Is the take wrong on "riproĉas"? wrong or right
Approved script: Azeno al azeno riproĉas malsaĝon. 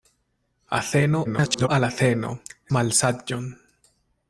wrong